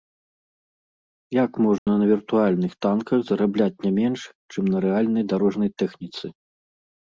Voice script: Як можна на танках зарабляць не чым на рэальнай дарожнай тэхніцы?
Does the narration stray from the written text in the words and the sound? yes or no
yes